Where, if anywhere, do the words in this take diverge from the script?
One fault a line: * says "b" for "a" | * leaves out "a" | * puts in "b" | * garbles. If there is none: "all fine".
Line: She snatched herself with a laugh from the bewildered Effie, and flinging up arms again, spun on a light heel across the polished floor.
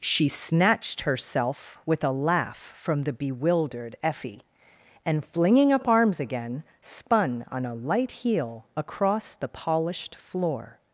all fine